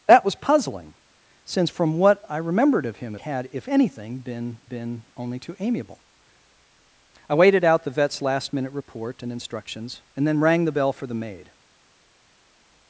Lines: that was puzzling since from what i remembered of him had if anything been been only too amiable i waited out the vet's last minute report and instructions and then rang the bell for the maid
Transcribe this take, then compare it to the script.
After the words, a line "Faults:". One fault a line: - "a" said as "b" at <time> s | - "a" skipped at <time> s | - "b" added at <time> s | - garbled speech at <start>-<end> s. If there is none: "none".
that was puzzling since from what i remembered of him had if anything been been only too amiable i waited out the vet's last minute report and instructions and then rang the bell for the maid
Faults:
none